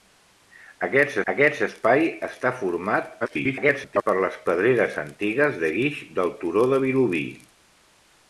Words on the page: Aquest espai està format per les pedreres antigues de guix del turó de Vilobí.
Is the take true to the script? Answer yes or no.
no